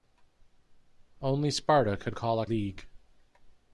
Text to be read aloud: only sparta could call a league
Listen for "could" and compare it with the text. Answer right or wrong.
right